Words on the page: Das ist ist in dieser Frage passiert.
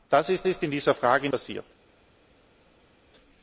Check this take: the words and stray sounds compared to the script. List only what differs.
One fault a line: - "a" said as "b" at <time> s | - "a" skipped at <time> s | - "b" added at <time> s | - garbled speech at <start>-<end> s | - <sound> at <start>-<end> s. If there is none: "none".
none